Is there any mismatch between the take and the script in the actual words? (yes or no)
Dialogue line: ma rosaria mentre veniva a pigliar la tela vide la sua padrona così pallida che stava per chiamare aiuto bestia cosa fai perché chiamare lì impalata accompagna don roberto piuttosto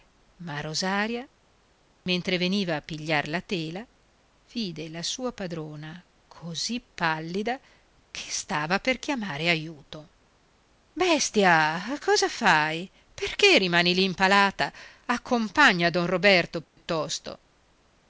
yes